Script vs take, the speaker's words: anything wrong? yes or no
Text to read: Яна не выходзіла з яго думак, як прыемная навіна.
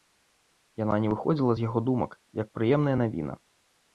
no